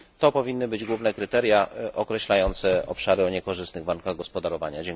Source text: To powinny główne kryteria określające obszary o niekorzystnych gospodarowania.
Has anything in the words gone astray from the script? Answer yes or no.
yes